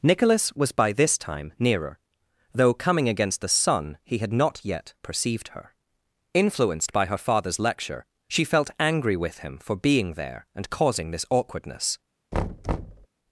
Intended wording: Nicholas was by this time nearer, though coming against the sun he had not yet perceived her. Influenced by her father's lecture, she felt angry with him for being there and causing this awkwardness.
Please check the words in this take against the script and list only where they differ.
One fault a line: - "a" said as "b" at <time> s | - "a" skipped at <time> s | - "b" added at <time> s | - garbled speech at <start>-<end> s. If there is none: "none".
none